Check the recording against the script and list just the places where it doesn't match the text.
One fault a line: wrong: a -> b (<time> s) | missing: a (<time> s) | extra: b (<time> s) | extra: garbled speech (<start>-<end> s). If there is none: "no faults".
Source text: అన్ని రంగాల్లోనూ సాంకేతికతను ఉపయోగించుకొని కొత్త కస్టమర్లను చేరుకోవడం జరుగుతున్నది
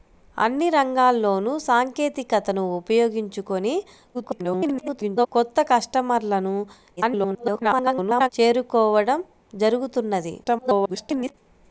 extra: garbled speech (4.1-5.3 s)
extra: garbled speech (7.0-8.3 s)
extra: garbled speech (10.4-11.3 s)